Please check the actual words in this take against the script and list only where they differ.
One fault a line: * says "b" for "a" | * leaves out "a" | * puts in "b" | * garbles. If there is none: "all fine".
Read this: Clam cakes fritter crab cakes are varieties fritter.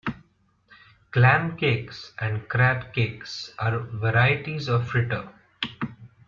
* says "and" for "fritter"
* puts in "of"